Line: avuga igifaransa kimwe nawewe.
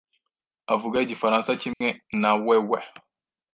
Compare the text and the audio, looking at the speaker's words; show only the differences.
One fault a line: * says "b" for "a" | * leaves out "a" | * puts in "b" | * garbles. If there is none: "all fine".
all fine